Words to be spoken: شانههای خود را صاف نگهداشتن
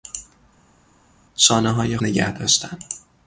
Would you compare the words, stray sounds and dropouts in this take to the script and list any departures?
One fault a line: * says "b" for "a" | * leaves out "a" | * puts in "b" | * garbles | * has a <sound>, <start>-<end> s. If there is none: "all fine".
* leaves out "خود را صاف"